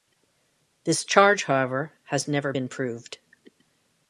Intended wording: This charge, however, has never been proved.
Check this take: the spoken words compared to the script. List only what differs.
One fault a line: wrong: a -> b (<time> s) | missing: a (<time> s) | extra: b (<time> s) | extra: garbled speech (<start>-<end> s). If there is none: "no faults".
no faults